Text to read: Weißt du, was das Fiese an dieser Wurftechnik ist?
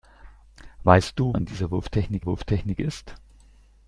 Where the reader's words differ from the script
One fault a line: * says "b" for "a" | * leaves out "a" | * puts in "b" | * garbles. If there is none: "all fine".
* leaves out "was das Fiese"
* puts in "Wurftechnik"